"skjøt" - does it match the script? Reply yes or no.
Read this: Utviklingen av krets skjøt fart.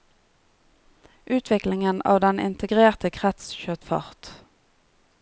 yes